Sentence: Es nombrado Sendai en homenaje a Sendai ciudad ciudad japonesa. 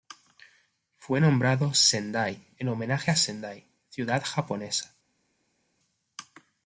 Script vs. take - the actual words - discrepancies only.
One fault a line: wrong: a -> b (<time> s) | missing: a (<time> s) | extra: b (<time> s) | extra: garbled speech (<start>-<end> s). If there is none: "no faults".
wrong: Es -> Fue (1.0 s)
missing: ciudad (4.2 s)